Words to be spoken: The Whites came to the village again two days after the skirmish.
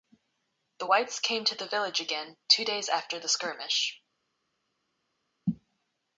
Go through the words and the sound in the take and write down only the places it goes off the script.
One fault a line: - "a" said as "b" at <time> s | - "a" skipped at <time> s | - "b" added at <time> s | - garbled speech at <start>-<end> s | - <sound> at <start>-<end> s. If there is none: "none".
none